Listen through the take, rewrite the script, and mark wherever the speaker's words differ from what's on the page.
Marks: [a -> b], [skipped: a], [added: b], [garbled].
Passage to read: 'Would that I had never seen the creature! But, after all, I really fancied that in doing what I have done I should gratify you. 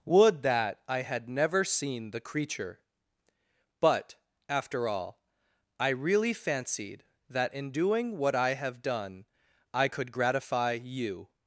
'Would that I had never seen the creature! But, after all, I really fancied that in doing what I have done I [should -> could] gratify you.